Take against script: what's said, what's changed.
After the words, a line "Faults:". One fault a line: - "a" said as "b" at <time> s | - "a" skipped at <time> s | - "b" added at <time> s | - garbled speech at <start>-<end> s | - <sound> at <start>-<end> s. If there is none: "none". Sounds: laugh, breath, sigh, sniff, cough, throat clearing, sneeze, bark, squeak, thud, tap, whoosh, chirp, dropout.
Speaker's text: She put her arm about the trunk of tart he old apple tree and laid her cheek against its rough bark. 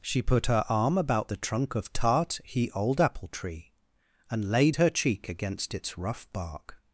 She put her arm about the trunk of tart he old apple tree and laid her cheek against its rough bark.
Faults:
none